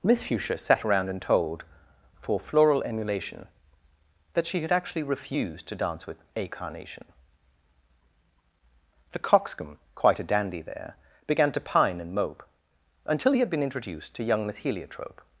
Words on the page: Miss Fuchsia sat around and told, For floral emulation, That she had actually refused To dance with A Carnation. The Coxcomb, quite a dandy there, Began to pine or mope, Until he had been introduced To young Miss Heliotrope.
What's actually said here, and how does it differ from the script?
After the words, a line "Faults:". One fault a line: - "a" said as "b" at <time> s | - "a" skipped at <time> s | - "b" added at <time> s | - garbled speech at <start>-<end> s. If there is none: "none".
Miss Fuchsia sat around and told, For floral emulation, That she had actually refused To dance with A Carnation. The Coxcomb, quite a dandy there, Began to pine and mope, Until he had been introduced To young Miss Heliotrope.
Faults:
- "or" said as "and" at 12.0 s